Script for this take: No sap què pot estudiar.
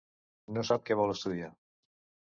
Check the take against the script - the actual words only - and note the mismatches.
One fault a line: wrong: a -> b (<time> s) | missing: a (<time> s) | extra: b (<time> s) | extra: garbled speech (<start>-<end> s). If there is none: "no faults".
wrong: pot -> vol (1.0 s)